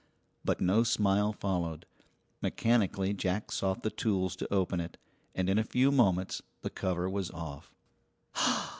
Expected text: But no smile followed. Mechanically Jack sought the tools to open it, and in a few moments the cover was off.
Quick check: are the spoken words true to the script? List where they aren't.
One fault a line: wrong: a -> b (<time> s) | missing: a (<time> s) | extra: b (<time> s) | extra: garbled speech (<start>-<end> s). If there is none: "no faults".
no faults